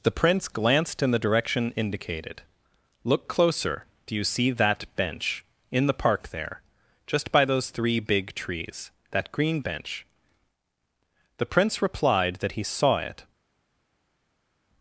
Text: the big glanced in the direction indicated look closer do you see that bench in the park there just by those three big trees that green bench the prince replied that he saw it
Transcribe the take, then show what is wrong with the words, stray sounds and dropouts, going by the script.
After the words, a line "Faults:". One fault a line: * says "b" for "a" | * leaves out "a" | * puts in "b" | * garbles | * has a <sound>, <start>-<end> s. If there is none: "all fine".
the prince glanced in the direction indicated look closer do you see that bench in the park there just by those three big trees that green bench the prince replied that he saw it
Faults:
* says "prince" for "big"